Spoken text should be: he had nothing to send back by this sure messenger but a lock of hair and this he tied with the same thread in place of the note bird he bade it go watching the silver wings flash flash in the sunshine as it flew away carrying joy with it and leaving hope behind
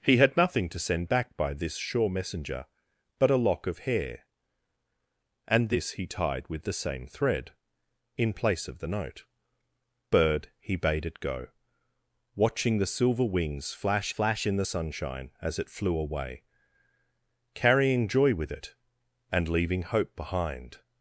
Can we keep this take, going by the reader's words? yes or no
yes